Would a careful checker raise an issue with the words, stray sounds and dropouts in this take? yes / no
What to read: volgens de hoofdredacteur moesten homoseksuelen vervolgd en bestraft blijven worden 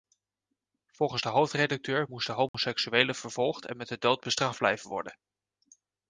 yes